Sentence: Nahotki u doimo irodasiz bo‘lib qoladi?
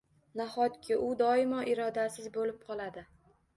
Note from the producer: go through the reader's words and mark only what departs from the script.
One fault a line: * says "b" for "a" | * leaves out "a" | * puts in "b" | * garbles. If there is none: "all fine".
all fine